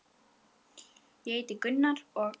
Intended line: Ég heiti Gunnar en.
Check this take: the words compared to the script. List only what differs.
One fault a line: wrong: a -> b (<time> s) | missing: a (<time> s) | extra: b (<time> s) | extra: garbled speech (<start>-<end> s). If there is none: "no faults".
wrong: en -> og (2.1 s)